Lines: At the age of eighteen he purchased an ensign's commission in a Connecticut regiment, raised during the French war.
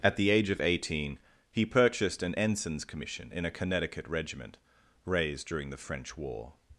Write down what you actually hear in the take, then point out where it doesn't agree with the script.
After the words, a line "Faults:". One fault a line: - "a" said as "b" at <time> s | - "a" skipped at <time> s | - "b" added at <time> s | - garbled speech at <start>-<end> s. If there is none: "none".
At the age of eighteen he purchased an ensign's commission in a Connecticut regiment, raised during the French war.
Faults:
none